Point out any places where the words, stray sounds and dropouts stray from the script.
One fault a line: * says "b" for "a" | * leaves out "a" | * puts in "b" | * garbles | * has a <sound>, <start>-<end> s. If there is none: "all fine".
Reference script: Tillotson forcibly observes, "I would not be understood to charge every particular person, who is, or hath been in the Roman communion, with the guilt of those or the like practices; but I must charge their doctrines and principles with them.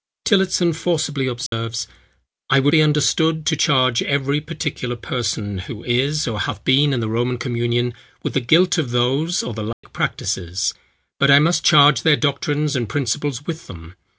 * has a dropout, 1.5-1.5 s
* leaves out "not"
* has a dropout, 9.7-9.8 s